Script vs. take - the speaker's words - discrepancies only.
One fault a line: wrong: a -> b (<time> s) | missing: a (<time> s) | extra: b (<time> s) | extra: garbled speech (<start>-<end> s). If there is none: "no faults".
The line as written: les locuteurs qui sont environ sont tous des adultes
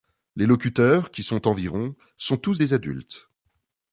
no faults